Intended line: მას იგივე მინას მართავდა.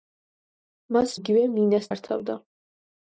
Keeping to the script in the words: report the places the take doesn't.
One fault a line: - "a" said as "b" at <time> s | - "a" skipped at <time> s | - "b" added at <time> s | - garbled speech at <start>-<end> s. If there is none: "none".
none